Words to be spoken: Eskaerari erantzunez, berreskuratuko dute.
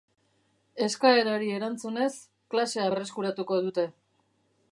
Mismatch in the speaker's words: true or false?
true